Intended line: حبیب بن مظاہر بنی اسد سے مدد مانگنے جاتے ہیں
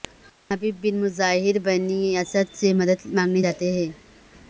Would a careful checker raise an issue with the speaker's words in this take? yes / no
no